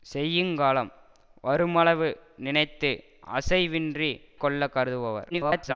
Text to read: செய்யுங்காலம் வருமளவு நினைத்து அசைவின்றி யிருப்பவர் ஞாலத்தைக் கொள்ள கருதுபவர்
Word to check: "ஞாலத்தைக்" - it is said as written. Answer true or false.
false